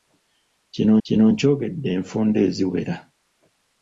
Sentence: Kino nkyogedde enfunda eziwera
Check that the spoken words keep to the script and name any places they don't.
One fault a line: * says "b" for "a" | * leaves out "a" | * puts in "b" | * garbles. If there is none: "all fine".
* puts in "kino"